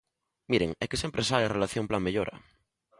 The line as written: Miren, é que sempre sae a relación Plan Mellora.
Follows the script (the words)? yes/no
yes